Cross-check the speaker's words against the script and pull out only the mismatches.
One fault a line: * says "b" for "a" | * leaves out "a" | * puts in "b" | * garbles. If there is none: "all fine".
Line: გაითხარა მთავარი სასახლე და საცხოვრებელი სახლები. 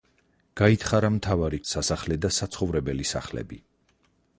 all fine